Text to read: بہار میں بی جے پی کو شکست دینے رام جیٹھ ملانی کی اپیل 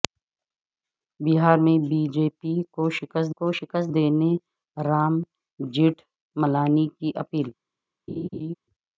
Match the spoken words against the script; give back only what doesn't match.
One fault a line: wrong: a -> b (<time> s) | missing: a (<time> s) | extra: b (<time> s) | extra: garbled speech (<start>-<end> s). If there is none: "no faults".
extra: کو شکست (3.4 s)